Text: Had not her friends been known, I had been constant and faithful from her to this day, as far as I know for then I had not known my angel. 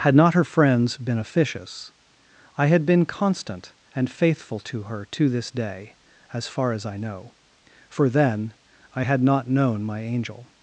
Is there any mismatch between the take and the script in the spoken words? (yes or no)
yes